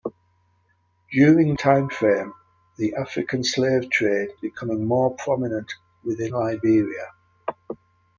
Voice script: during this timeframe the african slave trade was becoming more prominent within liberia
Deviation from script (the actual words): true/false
true